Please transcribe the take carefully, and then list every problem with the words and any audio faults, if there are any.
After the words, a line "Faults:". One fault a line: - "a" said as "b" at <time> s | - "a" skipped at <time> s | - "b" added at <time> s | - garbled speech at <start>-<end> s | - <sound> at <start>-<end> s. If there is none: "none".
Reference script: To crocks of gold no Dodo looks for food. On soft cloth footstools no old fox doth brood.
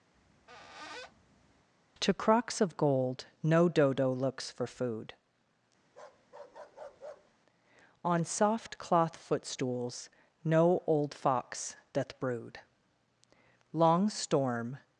To crocks of gold no Dodo looks for food. On soft cloth footstools no old fox doth brood. Long storm
Faults:
- squeak at 0.1-1.7 s
- bark at 5.9-7.4 s
- "Long storm" added at 13.7 s